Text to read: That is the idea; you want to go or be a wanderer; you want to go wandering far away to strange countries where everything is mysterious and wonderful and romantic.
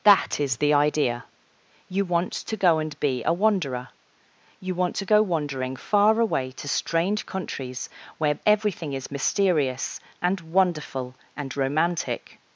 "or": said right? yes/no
no